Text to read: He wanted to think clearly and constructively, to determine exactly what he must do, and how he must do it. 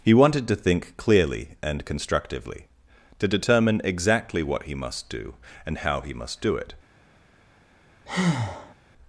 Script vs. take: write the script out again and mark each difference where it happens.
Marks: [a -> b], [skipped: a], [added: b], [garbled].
He wanted to think clearly and constructively, to determine exactly what he must do, and how he must do it.